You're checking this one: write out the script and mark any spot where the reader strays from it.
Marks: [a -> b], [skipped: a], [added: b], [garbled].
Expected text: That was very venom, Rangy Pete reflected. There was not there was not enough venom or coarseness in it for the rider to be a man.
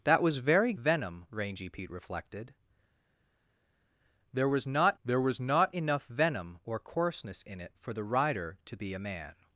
That was very venom, Rangy Pete reflected. There was not there was not enough venom or coarseness in it for the rider to be a man.